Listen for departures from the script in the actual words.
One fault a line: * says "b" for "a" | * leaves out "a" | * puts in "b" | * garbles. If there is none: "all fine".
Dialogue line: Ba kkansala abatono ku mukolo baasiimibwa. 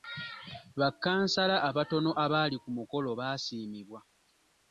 * puts in "abaali"